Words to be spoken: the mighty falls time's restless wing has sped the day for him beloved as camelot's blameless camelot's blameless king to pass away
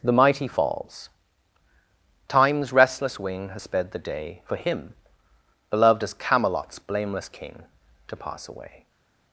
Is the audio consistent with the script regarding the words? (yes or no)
no